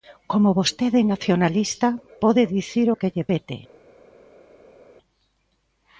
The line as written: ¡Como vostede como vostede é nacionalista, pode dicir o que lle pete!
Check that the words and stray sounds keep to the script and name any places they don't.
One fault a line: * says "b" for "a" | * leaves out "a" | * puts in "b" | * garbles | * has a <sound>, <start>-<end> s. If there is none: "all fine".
* leaves out "como vostede"